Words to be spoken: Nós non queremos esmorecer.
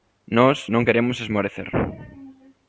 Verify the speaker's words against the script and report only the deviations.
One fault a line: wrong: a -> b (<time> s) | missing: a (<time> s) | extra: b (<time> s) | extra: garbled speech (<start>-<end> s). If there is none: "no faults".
no faults